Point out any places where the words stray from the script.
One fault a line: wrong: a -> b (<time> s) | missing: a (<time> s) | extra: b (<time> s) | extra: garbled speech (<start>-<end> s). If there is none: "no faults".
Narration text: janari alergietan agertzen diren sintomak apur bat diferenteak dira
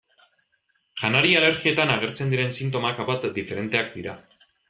missing: apur (3.0 s)